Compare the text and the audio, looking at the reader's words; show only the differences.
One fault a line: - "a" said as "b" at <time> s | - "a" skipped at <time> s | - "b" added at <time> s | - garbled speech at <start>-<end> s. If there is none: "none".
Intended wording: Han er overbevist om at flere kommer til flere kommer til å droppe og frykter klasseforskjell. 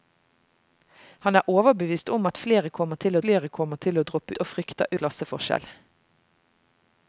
none